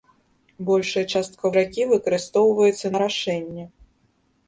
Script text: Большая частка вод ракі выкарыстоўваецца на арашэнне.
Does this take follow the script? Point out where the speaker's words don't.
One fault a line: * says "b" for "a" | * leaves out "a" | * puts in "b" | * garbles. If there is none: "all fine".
* leaves out "вод"
* leaves out "на"